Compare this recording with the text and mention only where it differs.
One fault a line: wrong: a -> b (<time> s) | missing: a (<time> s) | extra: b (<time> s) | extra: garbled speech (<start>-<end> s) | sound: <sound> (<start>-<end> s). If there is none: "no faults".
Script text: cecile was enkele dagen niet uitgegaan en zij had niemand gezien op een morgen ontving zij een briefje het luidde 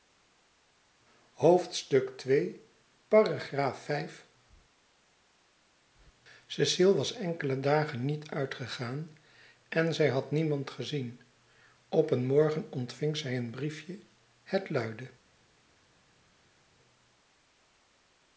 no faults